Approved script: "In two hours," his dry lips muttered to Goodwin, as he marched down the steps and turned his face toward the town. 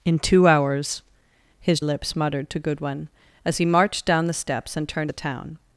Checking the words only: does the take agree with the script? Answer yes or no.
no